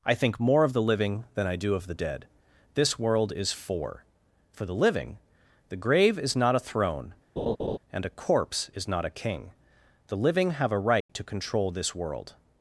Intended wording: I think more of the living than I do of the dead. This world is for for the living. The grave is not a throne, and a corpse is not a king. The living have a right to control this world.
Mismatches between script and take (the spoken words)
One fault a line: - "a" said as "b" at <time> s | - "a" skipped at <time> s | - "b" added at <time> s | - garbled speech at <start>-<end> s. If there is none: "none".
none